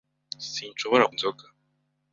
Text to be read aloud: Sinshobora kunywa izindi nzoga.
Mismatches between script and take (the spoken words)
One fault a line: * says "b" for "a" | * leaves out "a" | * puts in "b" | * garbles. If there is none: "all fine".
* leaves out "kunywa izindi"